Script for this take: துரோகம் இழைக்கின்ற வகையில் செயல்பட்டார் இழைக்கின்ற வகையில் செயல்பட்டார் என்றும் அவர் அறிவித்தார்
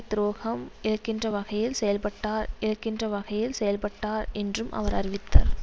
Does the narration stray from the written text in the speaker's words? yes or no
no